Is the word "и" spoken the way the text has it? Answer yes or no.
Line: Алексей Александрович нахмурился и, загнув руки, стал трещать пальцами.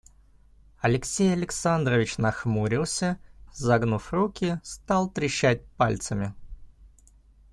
no